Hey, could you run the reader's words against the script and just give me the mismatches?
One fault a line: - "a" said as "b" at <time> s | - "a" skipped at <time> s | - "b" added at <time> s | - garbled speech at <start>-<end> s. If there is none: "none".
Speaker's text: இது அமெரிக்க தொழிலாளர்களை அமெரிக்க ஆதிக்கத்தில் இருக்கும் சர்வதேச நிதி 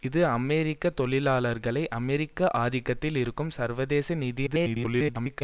- garbled speech at 4.5-5.4 s